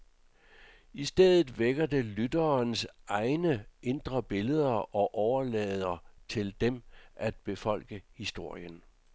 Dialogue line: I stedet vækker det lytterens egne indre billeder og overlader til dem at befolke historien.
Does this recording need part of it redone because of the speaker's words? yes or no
no